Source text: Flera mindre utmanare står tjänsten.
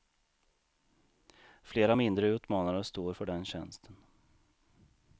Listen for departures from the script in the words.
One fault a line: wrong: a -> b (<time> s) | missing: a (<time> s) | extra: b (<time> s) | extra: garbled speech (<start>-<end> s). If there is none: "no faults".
extra: för den (3.1 s)